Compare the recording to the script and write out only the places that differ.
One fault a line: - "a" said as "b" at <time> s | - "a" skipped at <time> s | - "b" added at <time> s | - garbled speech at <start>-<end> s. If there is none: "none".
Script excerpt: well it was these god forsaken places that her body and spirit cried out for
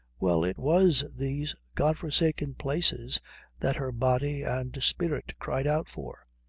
none